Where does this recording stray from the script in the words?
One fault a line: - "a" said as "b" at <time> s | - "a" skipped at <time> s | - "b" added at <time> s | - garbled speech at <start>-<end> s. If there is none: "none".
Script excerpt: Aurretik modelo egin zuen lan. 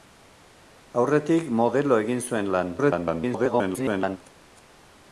- garbled speech at 2.8-4.2 s